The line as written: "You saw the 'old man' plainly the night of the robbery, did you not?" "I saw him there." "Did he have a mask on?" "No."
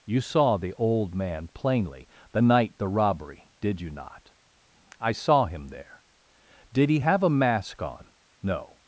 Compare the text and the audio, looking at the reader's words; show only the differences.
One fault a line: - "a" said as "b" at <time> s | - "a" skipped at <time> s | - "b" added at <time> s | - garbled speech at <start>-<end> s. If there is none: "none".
- "of" skipped at 2.8 s